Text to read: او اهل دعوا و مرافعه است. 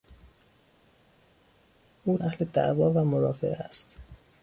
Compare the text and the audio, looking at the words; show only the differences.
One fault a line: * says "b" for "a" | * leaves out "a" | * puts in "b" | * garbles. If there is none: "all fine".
all fine